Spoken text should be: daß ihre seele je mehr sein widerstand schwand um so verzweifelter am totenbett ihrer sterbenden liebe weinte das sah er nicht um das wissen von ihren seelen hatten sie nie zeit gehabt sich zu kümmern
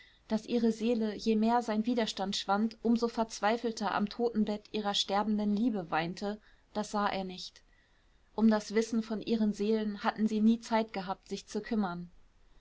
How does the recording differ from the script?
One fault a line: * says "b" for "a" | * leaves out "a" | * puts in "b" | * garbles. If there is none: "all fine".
all fine